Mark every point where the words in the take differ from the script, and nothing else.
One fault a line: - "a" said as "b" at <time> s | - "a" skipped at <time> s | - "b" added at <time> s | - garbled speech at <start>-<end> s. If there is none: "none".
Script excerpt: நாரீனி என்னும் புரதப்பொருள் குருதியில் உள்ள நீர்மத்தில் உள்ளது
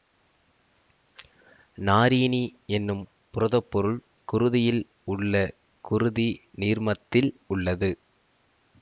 - "குருதி" added at 5.8 s